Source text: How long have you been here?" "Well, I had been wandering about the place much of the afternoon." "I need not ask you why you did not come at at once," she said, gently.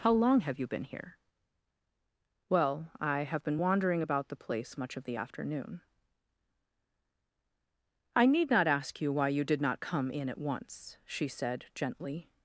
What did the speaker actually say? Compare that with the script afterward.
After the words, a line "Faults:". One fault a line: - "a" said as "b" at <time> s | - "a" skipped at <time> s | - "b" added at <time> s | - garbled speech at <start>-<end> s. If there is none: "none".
How long have you been here?" "Well, I have been wandering about the place much of the afternoon." "I need not ask you why you did not come in at once," she said, gently.
Faults:
- "had" said as "have" at 3.2 s
- "at" said as "in" at 10.1 s